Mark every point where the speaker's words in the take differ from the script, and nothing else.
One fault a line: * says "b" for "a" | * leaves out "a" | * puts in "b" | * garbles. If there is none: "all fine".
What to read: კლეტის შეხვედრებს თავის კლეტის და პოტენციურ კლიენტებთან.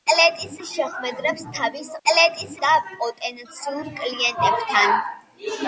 all fine